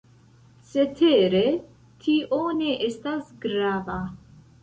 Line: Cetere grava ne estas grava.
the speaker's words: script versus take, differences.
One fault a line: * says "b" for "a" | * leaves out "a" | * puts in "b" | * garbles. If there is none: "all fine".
* says "tio" for "grava"